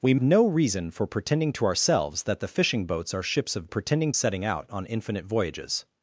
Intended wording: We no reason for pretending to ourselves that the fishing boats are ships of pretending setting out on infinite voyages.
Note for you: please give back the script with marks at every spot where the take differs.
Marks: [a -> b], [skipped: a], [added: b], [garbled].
We no reason for pretending to ourselves that the fishing boats are ships of pretending setting out on infinite voyages.